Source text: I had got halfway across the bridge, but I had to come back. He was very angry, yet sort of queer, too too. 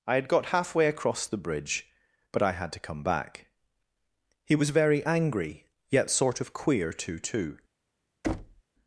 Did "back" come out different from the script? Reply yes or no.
no